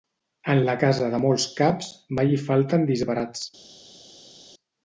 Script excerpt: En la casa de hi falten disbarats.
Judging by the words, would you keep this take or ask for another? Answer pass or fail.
fail